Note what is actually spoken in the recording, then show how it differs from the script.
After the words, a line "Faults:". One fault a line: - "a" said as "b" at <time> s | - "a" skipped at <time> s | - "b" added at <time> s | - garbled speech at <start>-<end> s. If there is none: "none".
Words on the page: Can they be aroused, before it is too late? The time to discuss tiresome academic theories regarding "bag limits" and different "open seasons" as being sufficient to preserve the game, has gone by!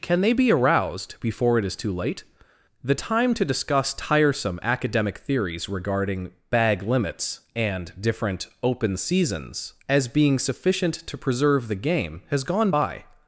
Can they be aroused, before it is too late? The time to discuss tiresome academic theories regarding "bag limits" and different "open seasons" as being sufficient to preserve the game, has gone by!
Faults:
none